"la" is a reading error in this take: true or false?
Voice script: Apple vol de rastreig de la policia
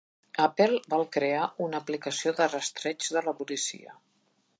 false